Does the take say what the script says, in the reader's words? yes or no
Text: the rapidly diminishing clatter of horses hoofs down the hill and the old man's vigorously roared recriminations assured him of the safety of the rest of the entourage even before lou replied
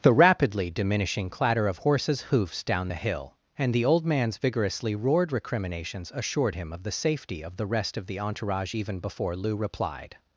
yes